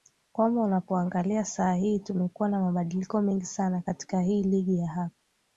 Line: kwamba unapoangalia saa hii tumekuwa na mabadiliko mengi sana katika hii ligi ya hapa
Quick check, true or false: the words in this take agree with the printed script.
true